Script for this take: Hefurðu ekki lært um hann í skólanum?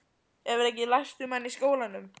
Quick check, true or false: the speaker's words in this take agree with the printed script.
true